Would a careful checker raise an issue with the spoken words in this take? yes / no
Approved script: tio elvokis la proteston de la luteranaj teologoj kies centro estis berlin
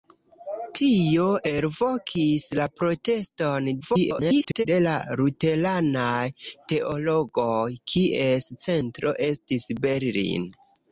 yes